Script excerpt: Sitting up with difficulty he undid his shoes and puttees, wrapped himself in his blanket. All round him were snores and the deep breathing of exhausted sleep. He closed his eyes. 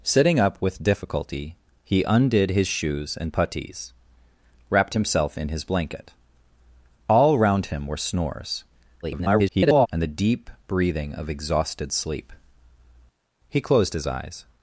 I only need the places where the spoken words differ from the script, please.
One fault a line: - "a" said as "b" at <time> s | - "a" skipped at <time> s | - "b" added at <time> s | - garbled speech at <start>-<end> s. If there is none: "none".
- garbled speech at 9.0-9.9 s